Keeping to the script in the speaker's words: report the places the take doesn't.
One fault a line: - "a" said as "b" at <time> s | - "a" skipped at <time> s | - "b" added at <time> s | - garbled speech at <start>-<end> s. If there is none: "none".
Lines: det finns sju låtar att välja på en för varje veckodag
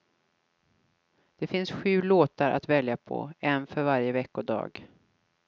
none